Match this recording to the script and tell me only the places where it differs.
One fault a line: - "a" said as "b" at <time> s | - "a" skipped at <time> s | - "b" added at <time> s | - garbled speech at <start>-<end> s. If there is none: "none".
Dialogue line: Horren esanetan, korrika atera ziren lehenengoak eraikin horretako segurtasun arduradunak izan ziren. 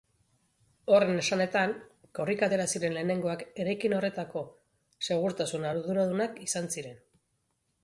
none